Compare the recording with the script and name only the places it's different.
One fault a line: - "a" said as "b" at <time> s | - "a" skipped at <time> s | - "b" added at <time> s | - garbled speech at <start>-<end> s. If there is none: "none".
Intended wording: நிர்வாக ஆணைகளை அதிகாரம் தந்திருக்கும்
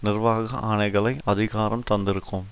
none